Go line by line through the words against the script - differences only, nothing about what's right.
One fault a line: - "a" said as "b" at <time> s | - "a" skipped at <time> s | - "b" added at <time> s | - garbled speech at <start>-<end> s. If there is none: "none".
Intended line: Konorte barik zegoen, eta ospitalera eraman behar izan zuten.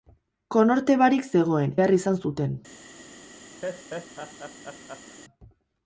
- "eta ospitalera eraman" skipped at 1.8 s